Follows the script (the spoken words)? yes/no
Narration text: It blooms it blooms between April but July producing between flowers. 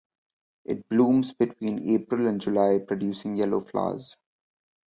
no